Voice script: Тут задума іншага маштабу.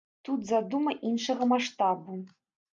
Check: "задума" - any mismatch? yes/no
no